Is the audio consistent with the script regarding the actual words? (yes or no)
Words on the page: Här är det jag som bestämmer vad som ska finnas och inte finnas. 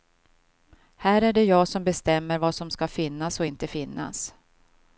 yes